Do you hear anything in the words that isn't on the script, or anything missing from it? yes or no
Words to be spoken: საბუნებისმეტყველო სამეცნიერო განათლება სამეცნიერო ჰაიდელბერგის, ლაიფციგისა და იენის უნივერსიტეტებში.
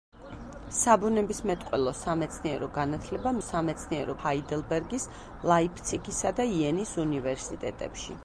no